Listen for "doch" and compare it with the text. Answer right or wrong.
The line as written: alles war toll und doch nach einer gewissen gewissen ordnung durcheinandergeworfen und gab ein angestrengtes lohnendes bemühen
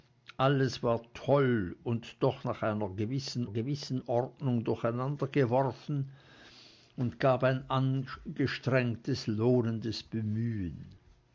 right